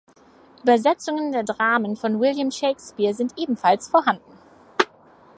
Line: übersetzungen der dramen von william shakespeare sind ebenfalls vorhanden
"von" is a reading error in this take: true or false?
false